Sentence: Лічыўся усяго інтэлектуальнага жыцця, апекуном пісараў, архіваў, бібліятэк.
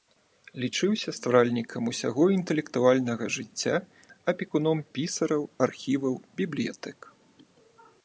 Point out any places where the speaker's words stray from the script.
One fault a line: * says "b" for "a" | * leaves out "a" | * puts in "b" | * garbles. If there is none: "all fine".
* puts in "стваральнікам"